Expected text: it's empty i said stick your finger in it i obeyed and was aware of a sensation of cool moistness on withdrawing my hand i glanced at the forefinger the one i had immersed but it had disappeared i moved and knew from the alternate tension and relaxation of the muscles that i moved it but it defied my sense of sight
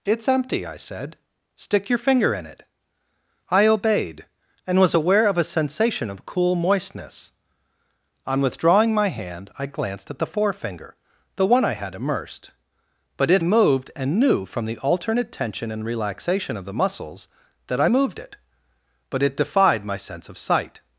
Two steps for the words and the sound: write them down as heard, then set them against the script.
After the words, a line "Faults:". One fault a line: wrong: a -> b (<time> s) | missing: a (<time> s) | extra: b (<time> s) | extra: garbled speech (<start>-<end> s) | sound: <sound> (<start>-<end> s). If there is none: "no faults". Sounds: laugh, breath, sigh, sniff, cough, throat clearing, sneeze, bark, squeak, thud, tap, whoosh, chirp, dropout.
it's empty i said stick your finger in it i obeyed and was aware of a sensation of cool moistness on withdrawing my hand i glanced at the forefinger the one i had immersed but it moved and knew from the alternate tension and relaxation of the muscles that i moved it but it defied my sense of sight
Faults:
missing: had disappeared i (13.4 s)